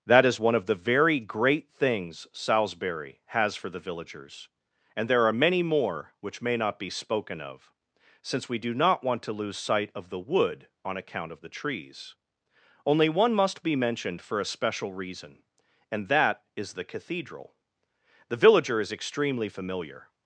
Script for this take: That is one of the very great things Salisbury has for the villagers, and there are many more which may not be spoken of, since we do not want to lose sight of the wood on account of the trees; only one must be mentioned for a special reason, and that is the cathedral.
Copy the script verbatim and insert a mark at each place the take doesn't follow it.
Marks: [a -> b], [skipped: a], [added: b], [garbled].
That is one of the very great things Salisbury has for the villagers, and there are many more which may not be spoken of, since we do not want to lose sight of the wood on account of the trees; only one must be mentioned for a special reason, and that is the cathedral. [added: The villager is extremely familiar]